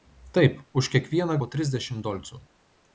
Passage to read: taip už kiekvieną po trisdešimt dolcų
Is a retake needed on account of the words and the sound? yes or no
no